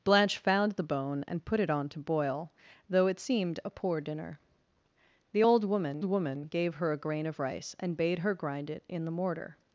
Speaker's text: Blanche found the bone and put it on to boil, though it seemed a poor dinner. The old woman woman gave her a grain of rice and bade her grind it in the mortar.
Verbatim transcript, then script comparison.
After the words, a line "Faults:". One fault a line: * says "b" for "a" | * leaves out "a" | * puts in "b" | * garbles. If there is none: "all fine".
Blanche found the bone and put it on to boil, though it seemed a poor dinner. The old woman woman gave her a grain of rice and bade her grind it in the mortar.
Faults:
all fine